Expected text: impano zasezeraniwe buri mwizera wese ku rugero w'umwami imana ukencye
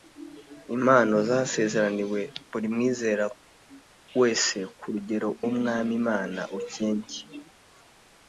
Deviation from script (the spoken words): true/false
false